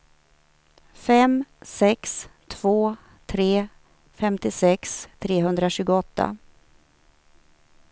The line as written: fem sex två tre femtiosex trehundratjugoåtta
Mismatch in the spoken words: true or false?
false